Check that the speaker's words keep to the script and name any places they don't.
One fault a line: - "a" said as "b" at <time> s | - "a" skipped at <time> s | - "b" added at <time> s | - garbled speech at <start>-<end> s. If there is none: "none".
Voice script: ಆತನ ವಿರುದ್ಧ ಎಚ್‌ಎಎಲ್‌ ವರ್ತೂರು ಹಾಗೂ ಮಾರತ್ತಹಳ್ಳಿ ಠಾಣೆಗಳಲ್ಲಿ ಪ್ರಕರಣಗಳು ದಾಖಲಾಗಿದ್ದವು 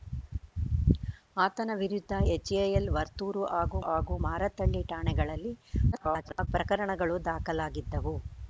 - "ಹಾಗೂ" added at 3.8 s
- garbled speech at 5.9-6.5 s